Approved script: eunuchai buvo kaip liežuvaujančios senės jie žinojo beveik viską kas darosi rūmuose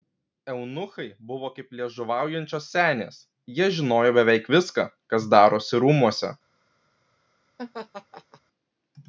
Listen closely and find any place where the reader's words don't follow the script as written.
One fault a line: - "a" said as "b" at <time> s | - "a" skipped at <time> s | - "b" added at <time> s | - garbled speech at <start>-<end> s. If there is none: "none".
none